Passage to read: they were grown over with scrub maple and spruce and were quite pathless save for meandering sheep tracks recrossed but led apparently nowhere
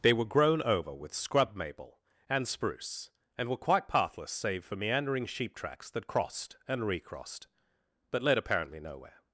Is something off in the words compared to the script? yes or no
yes